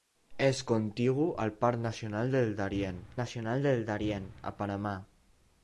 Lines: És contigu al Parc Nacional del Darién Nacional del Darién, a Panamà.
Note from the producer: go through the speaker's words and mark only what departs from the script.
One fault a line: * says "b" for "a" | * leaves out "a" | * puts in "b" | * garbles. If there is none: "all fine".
all fine